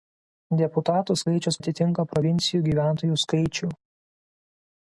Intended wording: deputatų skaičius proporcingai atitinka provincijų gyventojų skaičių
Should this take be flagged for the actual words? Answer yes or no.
yes